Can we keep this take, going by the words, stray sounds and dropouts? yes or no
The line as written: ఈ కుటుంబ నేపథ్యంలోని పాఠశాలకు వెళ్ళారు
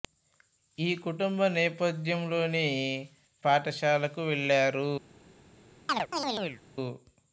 no